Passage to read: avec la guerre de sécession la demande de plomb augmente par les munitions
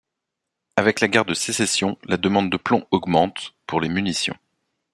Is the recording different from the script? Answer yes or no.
yes